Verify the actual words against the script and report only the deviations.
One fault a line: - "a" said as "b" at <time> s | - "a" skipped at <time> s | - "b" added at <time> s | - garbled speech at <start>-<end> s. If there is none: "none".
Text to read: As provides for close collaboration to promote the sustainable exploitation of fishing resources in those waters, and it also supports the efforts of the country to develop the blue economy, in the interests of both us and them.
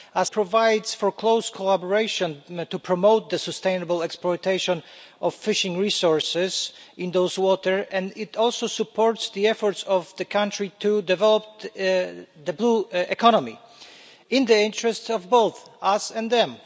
none